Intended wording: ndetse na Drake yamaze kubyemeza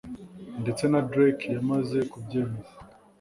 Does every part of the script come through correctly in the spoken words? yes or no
yes